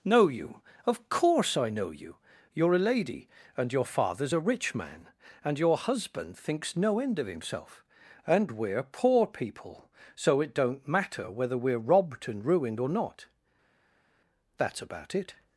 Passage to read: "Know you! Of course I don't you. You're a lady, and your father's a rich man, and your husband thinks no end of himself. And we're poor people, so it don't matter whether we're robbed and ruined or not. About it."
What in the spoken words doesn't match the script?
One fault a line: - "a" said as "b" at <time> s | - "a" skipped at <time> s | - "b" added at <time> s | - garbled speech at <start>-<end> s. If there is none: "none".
- "don't" said as "know" at 1.7 s
- "That's" added at 14.6 s